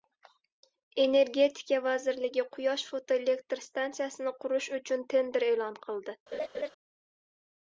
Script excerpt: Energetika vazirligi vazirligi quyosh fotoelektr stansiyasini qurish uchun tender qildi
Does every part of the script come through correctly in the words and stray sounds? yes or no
no